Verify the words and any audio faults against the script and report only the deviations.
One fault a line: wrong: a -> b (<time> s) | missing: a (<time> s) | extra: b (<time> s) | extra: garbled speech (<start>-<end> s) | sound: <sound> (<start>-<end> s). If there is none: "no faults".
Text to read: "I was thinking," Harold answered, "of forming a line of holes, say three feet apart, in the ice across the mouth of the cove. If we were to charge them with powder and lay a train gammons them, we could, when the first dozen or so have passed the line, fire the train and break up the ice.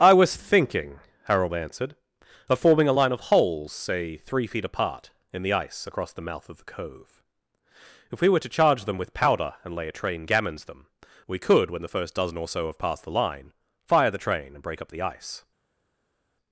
no faults